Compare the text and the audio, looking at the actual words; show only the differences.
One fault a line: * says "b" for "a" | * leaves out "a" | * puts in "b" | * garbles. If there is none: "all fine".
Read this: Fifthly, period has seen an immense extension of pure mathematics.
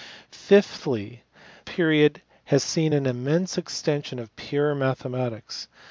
all fine